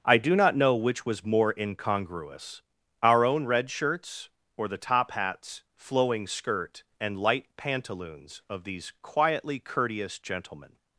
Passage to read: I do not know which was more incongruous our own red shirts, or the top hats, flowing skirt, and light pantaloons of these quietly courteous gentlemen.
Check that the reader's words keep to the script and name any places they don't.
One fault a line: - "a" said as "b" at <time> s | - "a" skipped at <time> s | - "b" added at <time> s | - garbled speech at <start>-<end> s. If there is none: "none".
none